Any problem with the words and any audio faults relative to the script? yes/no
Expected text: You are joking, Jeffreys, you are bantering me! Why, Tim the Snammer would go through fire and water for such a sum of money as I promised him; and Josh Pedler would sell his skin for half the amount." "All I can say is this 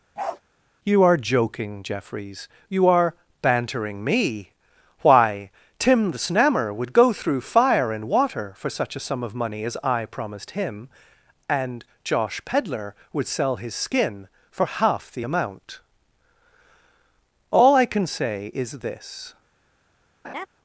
yes